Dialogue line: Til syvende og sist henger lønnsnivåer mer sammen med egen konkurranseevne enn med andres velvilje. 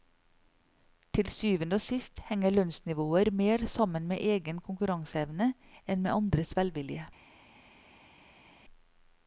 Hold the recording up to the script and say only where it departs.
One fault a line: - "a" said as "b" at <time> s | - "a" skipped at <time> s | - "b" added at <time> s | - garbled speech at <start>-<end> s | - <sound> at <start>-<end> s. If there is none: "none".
none